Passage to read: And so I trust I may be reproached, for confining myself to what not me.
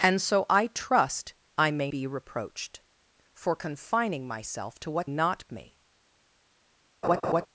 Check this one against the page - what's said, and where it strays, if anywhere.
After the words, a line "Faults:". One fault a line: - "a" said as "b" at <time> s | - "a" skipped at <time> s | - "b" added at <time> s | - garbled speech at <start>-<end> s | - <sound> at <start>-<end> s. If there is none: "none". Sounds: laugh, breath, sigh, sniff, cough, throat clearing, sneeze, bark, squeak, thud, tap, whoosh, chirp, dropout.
And so I trust I may be reproached, for confining myself to what not me.
Faults:
- laugh at 7.0-7.5 s